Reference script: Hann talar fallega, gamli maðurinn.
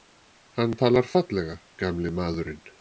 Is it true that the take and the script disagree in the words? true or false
false